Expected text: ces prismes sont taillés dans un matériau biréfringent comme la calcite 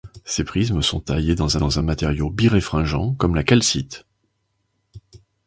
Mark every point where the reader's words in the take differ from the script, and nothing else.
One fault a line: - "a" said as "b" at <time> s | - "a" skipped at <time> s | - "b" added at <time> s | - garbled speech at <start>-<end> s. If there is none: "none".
- "dans" added at 1.6 s